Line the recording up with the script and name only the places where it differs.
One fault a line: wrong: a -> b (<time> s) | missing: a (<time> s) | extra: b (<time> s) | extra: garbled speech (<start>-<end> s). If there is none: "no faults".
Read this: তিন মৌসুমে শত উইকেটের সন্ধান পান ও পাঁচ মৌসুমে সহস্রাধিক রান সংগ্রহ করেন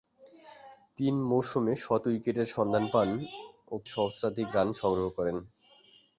missing: পাঁচ মৌসুমে (3.8 s)